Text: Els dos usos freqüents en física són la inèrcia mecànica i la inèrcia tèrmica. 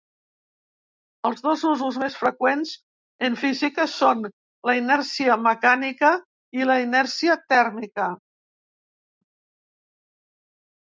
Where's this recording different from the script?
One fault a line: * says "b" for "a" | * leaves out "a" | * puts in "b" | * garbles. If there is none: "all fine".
* puts in "més"